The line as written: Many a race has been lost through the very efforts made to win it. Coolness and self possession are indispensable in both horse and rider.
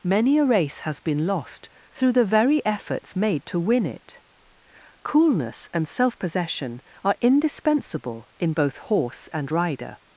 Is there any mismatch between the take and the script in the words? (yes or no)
no